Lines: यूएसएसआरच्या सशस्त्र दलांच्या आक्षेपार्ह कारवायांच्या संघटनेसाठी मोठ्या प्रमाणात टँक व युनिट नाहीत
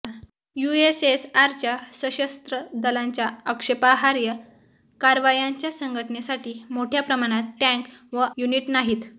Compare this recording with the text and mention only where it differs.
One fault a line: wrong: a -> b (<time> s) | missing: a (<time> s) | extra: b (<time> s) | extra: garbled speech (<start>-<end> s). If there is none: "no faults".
no faults